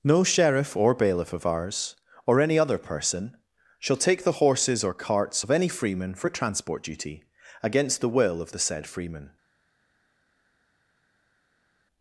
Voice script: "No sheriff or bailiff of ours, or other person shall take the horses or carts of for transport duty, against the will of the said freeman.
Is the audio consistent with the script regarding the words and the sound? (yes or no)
no